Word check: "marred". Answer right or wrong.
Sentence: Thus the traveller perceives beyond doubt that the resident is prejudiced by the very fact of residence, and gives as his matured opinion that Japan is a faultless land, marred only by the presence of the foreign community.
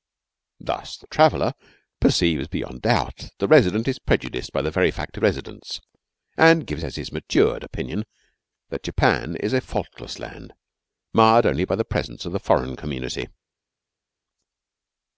right